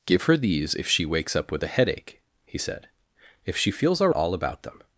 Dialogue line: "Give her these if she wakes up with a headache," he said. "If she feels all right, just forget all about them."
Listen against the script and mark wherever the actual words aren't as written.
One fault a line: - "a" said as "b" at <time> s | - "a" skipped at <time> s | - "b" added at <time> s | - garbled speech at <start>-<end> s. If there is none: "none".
- "right just forget" skipped at 4.1 s